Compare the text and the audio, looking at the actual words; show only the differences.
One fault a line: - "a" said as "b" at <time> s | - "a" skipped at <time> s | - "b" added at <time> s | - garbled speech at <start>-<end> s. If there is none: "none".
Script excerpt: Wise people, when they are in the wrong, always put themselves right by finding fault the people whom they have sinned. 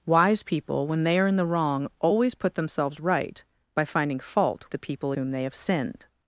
none